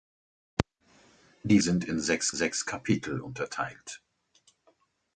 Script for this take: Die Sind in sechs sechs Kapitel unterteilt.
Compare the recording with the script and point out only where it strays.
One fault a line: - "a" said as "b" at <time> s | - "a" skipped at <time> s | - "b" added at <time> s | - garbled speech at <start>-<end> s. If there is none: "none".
none